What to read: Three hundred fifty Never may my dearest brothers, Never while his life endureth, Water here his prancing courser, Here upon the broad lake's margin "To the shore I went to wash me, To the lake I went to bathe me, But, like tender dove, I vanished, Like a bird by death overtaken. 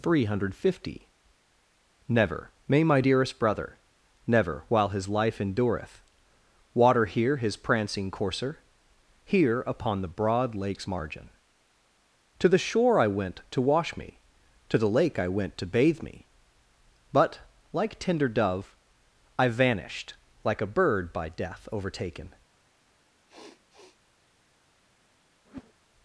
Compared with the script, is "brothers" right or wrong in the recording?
wrong